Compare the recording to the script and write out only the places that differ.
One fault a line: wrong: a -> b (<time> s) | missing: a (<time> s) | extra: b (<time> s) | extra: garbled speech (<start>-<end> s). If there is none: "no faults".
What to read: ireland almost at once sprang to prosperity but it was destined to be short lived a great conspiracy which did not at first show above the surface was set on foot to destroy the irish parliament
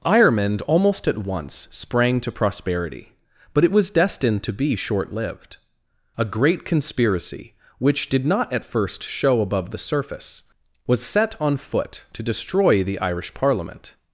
no faults